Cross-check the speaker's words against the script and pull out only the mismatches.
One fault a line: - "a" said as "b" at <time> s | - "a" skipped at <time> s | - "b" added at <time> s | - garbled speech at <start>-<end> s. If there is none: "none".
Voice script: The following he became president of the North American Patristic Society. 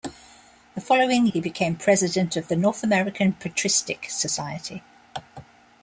none